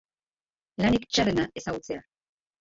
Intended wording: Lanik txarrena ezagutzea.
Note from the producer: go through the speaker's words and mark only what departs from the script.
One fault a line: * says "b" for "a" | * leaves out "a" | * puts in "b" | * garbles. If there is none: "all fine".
all fine